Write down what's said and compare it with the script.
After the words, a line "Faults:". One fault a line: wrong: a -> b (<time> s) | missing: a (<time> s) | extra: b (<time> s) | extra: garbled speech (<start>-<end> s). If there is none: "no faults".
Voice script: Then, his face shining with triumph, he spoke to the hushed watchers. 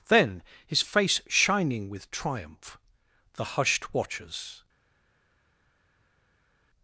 Then, his face shining with triumph, the hushed watchers.
Faults:
missing: he spoke to (2.8 s)